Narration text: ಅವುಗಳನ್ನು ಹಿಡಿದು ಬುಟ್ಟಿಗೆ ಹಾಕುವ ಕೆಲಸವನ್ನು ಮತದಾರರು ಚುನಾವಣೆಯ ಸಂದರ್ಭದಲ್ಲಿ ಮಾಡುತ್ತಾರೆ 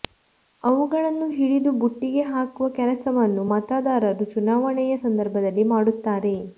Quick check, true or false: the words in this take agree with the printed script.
true